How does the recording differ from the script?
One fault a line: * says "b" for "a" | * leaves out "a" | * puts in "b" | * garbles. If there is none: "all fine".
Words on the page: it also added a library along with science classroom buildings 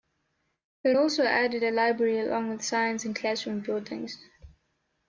* puts in "and"